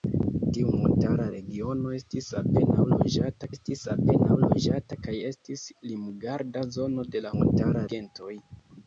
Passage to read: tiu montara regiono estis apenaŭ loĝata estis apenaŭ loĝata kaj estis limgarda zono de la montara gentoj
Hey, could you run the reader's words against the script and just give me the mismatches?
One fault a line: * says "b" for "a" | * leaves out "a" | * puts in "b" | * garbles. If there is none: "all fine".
all fine